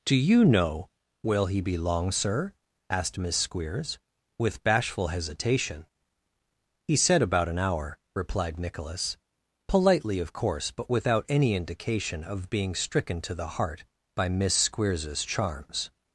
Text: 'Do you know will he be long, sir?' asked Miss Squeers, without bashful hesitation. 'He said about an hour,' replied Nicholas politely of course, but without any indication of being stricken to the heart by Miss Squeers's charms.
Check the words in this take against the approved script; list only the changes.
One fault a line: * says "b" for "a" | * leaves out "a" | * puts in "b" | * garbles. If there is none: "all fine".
* says "with" for "without"